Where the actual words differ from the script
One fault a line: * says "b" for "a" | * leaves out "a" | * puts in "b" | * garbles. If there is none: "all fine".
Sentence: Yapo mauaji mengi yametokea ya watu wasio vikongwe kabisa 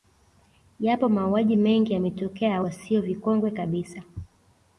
* leaves out "watu"